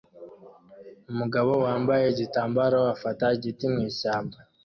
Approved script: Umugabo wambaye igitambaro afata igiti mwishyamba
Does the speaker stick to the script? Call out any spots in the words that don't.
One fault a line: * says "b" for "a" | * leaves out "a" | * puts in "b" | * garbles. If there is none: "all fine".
all fine